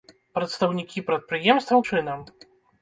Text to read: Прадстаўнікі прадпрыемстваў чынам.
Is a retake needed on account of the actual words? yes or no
no